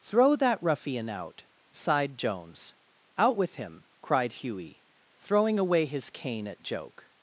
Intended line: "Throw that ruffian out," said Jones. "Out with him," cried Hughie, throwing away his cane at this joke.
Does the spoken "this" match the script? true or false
false